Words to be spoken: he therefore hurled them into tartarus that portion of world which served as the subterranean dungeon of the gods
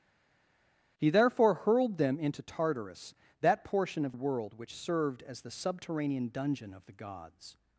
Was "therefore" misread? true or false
false